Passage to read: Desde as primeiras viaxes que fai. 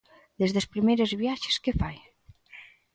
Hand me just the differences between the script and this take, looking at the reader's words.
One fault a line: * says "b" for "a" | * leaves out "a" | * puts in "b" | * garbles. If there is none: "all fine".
all fine